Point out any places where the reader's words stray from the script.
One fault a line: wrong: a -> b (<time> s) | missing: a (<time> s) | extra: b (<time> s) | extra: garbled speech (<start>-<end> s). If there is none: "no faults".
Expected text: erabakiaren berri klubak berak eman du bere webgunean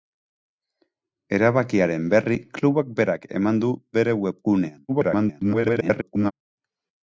extra: garbled speech (4.9-6.3 s)